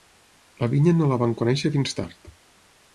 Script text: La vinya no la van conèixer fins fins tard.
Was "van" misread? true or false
false